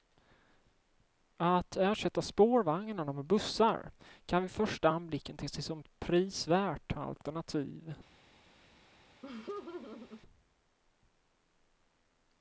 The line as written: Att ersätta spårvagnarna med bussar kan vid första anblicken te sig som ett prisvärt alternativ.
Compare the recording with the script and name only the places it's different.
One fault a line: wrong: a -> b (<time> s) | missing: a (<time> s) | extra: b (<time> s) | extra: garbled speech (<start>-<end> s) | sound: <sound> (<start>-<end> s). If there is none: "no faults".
sound: laugh (9.2-10.2 s)